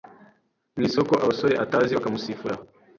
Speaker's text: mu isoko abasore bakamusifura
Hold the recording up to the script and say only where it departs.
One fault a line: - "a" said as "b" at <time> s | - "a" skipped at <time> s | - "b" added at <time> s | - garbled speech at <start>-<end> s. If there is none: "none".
- "atazi" added at 1.6 s